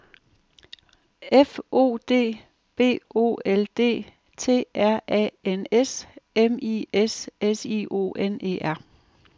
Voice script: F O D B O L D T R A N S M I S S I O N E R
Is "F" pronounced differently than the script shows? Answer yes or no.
no